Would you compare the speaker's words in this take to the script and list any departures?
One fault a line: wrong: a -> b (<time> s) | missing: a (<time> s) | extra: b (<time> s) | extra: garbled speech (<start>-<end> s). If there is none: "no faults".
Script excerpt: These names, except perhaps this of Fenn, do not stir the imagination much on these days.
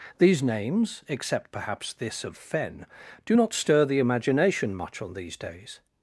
no faults